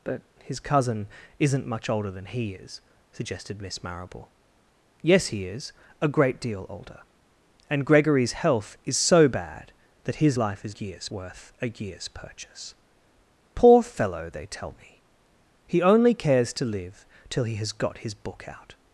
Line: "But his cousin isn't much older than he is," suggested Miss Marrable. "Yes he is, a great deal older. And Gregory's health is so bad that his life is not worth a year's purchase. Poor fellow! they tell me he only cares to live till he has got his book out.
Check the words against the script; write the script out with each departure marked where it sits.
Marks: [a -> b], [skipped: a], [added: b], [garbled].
"But his cousin isn't much older than he is," suggested Miss Marrable. "Yes he is, a great deal older. And Gregory's health is so bad that his life is [not -> year's] worth a year's purchase. Poor fellow! they tell me he only cares to live till he has got his book out.